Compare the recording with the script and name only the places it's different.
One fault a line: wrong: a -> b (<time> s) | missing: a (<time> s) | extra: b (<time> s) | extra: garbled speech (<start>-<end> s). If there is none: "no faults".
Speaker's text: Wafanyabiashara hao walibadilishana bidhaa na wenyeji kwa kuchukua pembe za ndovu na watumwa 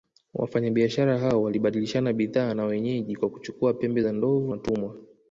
missing: na (4.5 s)